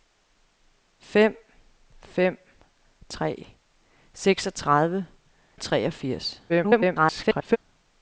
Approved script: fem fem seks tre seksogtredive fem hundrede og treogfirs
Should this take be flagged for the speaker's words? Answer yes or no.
yes